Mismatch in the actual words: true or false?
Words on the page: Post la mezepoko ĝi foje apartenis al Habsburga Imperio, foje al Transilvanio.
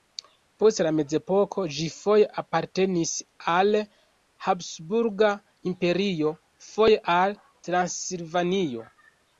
false